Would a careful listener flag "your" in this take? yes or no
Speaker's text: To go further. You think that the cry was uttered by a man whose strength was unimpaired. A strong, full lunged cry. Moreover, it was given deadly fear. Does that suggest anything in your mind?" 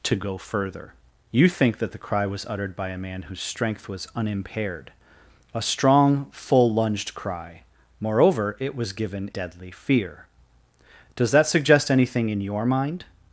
no